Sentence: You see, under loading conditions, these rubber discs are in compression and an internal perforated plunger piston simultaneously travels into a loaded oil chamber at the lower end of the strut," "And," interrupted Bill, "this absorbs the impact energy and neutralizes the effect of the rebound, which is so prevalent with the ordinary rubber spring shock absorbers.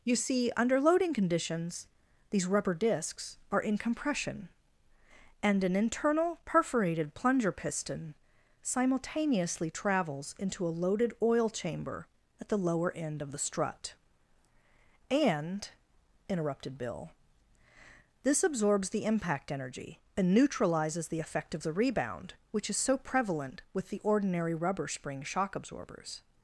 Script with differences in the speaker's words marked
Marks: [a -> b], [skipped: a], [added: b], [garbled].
You see, under loading conditions, these rubber discs are in compression and an internal perforated plunger piston simultaneously travels into a loaded oil chamber at the lower end of the strut," "And," interrupted Bill, "this absorbs the impact energy and neutralizes the effect of the rebound, which is so prevalent with the ordinary rubber spring shock absorbers.